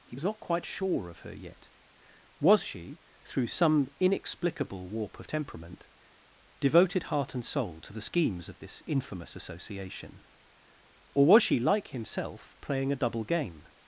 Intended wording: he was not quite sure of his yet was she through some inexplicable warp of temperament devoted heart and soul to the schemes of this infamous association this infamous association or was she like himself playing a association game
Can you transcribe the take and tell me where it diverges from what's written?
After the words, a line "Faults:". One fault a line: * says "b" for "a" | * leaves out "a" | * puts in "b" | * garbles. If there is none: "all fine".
he was not quite sure of her yet was she through some inexplicable warp of temperament devoted heart and soul to the schemes of this infamous association or was she like himself playing a double game
Faults:
* says "her" for "his"
* leaves out "this infamous association"
* says "double" for "association"